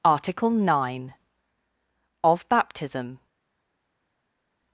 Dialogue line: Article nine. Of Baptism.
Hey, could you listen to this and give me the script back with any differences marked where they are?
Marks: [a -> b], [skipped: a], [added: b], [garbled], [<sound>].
Article nine. Of Baptism.